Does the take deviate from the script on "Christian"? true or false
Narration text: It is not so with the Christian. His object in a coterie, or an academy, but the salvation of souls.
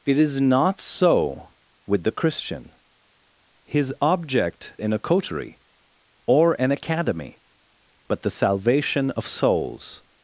false